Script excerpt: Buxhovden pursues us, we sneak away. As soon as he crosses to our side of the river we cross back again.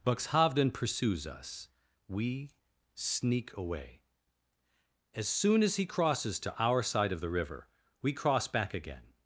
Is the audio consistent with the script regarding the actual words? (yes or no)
yes